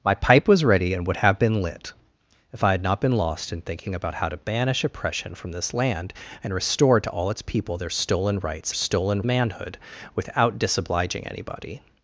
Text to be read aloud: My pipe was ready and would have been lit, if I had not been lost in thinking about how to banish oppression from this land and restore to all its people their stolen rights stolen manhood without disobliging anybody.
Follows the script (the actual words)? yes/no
yes